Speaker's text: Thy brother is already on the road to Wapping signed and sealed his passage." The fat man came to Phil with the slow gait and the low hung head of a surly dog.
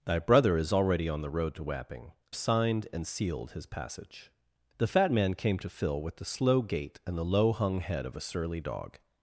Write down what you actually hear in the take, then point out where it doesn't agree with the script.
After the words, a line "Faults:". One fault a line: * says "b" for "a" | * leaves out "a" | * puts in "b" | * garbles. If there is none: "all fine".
Thy brother is already on the road to Wapping signed and sealed his passage." The fat man came to Phil with the slow gait and the low hung head of a surly dog.
Faults:
all fine